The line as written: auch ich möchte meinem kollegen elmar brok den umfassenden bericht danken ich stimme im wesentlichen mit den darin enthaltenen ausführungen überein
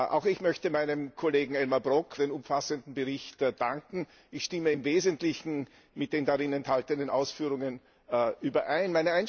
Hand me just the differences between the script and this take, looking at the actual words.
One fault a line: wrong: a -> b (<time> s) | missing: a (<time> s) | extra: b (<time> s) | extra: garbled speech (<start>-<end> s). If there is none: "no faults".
no faults